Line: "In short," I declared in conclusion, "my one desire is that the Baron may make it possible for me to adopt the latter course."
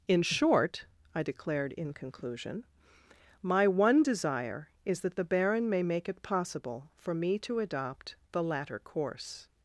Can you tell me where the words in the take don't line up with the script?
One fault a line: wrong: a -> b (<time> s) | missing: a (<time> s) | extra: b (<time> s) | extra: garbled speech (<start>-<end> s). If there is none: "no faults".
no faults